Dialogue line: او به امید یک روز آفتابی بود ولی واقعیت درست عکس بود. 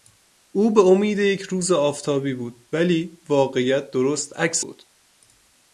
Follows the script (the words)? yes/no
yes